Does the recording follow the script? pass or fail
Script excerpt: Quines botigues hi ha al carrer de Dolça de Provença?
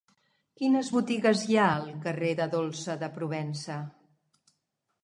pass